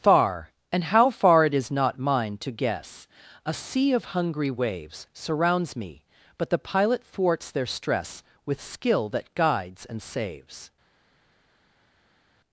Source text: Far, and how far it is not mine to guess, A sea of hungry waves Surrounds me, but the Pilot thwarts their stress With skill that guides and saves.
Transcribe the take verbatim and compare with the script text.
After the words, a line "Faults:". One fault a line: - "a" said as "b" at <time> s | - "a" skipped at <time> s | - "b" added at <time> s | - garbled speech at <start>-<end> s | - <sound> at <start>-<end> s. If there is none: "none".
Far, and how far it is not mine to guess, A sea of hungry waves Surrounds me, but the Pilot thwarts their stress With skill that guides and saves.
Faults:
none